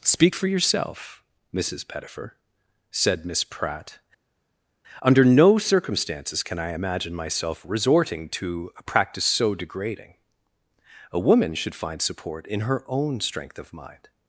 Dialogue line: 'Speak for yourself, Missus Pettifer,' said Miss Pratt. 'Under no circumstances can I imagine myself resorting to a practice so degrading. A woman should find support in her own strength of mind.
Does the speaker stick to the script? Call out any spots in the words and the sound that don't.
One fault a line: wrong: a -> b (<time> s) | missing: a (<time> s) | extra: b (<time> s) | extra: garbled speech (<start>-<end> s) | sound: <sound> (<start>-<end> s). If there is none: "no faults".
no faults